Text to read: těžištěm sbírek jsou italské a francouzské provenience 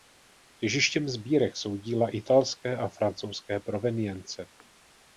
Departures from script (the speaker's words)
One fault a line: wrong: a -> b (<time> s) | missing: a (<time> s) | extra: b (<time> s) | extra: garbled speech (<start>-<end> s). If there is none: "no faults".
extra: díla (1.8 s)